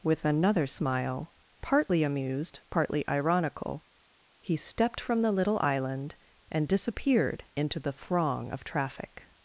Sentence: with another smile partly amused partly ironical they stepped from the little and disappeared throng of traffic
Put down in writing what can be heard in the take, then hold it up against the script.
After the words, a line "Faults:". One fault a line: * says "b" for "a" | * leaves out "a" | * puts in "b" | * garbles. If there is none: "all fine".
with another smile partly amused partly ironical he stepped from the little island and disappeared into the throng of traffic
Faults:
* says "he" for "they"
* puts in "island"
* puts in "into the"